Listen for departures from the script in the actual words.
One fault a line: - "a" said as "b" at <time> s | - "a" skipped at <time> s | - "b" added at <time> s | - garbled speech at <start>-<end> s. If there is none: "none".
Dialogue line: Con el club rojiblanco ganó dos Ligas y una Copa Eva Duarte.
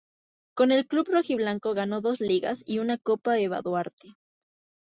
none